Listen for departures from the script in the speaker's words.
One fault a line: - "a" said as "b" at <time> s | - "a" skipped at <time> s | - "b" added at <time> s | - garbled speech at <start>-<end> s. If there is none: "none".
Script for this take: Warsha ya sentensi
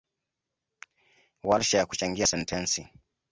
- "kuchangia" added at 1.9 s